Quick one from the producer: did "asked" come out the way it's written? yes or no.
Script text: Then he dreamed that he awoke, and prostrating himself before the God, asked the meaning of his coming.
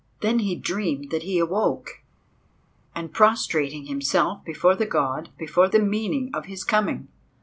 no